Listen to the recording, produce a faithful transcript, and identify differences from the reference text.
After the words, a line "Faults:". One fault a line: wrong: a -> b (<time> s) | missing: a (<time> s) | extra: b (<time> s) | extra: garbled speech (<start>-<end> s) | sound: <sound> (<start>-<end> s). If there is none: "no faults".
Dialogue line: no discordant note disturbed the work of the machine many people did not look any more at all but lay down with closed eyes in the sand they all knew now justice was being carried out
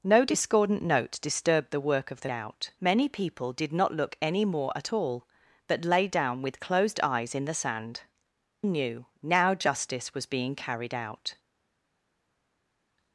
no discordant note disturbed the work of the out many people did not look any more at all but lay down with closed eyes in the sand knew now justice was being carried out
Faults:
wrong: machine -> out (2.3 s)
missing: they all (8.0 s)